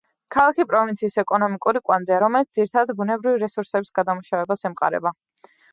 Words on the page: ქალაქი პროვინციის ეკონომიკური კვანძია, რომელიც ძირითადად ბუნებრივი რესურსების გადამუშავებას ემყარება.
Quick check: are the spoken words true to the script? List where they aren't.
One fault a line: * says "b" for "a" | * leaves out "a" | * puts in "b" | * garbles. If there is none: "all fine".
all fine